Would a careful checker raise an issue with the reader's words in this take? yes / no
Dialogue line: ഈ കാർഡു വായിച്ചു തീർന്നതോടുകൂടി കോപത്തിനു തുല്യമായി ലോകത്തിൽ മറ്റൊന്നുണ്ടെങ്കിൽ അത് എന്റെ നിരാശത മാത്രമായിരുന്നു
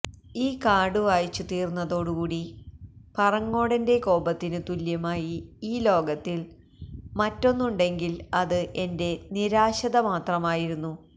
yes